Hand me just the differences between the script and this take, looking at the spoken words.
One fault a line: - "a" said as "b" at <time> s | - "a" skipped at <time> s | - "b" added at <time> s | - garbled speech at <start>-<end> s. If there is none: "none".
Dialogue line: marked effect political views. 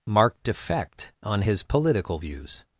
- "on his" added at 1.2 s